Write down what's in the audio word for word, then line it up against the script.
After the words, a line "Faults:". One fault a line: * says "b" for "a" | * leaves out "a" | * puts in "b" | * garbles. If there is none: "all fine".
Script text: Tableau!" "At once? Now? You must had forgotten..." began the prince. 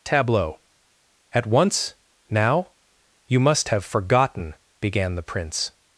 Tableau!" "At once? Now? You must have forgotten..." began the prince.
Faults:
* says "have" for "had"